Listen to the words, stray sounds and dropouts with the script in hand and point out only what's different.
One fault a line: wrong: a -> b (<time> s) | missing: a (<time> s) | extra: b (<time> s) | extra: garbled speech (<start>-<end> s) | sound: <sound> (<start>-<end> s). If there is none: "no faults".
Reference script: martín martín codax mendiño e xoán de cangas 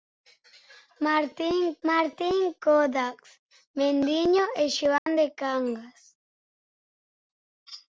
sound: dropout (5.0-5.1 s)